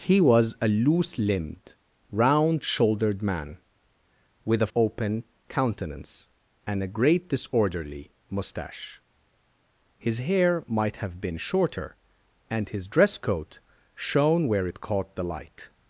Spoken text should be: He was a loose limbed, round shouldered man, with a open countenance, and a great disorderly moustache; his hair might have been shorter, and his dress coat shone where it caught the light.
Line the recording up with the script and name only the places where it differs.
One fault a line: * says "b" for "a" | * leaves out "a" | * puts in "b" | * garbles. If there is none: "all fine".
all fine